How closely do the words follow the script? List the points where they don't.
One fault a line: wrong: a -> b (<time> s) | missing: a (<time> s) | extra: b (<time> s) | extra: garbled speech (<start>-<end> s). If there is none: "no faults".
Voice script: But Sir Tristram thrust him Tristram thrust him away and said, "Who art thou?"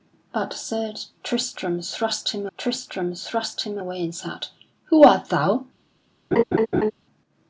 no faults